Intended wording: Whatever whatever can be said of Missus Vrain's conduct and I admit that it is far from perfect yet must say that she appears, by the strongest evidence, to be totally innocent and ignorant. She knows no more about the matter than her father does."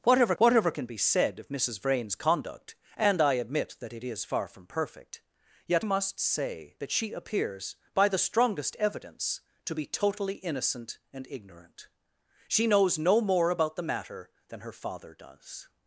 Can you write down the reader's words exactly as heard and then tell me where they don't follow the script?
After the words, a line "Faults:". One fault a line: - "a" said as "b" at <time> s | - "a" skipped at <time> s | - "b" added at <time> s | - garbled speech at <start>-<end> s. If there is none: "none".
Whatever whatever can be said of Missus Vrain's conduct and I admit that it is far from perfect yet must say that she appears, by the strongest evidence, to be totally innocent and ignorant. She knows no more about the matter than her father does."
Faults:
none